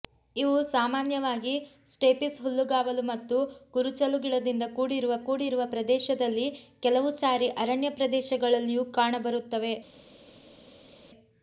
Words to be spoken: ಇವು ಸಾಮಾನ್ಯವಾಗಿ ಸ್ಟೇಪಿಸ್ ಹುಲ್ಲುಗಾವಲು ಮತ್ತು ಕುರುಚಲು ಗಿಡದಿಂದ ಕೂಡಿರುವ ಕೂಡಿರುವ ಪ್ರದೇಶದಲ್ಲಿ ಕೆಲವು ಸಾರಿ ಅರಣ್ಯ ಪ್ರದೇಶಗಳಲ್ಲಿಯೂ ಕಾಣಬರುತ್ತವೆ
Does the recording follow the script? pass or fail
pass